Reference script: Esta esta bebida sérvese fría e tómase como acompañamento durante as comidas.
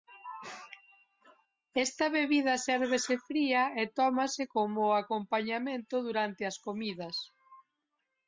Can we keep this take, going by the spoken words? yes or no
no